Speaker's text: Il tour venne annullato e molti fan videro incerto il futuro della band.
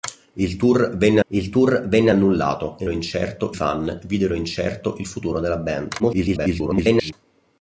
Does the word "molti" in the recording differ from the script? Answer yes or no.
yes